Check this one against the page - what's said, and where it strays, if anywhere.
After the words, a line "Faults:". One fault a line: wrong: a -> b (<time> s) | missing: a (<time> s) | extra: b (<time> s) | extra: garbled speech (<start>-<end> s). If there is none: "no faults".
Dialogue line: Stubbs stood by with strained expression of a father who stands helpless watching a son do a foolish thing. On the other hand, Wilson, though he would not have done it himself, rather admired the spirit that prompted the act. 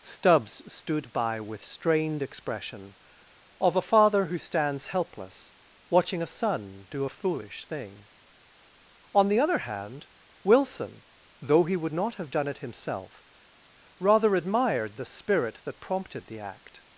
Stubbs stood by with strained expression of a father who stands helpless watching a son do a foolish thing. On the other hand, Wilson, though he would not have done it himself, rather admired the spirit that prompted the act.
Faults:
no faults